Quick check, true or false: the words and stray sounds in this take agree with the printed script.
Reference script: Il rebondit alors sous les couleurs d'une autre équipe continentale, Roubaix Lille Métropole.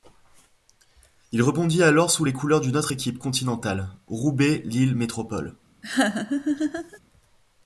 false